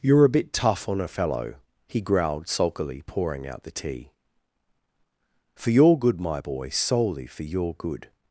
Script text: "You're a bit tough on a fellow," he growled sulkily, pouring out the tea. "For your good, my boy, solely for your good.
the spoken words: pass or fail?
pass